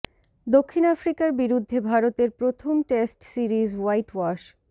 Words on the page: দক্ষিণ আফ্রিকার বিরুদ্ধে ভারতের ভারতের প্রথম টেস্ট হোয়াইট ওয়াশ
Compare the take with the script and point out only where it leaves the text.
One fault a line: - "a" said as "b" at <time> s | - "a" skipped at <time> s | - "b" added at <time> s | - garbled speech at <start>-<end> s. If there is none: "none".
- "ভারতের" skipped at 2.3 s
- "সিরিজ" added at 3.3 s